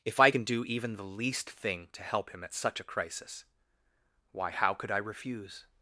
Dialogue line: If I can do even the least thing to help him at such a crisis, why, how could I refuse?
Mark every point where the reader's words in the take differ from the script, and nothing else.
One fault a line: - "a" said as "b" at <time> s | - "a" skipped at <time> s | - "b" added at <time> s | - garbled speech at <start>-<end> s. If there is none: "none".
none